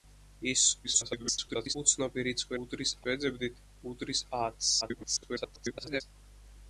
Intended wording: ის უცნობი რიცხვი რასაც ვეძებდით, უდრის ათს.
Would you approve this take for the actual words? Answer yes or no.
no